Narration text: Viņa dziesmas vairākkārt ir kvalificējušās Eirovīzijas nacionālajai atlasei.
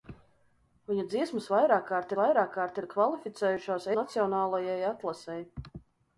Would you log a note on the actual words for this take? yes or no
yes